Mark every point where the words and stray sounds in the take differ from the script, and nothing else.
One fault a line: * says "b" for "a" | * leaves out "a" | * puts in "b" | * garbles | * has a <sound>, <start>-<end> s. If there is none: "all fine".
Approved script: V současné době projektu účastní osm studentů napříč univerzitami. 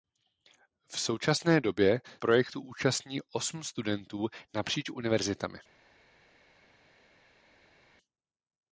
all fine